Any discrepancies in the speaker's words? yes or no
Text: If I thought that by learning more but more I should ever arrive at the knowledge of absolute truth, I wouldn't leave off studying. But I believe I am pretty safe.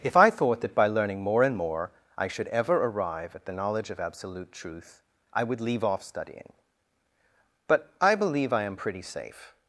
yes